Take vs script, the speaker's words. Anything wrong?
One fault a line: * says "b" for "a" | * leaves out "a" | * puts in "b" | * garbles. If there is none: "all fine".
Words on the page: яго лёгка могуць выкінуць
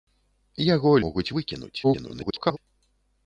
* leaves out "лёгка"
* garbles